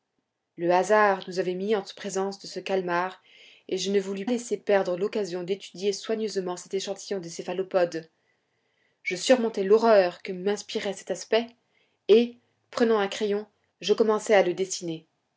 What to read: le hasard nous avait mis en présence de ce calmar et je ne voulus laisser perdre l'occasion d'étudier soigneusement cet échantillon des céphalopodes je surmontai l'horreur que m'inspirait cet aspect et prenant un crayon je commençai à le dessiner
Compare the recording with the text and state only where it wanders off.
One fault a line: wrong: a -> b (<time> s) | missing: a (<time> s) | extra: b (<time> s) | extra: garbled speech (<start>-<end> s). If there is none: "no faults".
no faults